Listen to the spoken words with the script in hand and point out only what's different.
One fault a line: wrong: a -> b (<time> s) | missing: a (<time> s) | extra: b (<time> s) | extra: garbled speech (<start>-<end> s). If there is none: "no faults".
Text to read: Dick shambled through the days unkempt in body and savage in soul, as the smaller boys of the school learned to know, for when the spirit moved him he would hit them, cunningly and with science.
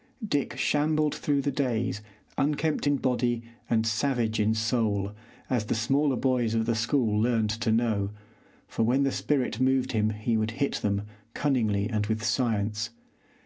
no faults